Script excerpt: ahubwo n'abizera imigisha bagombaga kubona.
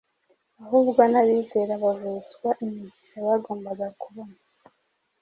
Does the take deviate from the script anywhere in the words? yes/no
yes